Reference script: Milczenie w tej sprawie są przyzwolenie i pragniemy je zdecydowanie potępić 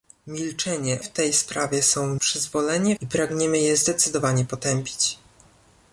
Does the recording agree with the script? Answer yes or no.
yes